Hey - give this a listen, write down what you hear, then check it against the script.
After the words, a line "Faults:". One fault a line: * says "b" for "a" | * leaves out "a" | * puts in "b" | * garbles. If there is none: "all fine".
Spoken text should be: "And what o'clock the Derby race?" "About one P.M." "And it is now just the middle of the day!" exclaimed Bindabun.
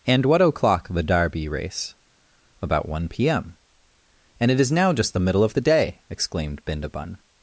"And what o'clock the Derby race?" "About one P.M." "And it is now just the middle of the day!" exclaimed Bindabun.
Faults:
all fine